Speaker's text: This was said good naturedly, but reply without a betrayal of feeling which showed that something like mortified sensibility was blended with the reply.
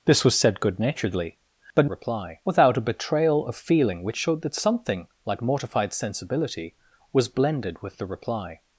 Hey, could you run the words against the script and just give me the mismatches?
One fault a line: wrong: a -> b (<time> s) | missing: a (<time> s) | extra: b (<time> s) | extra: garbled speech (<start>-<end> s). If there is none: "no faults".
no faults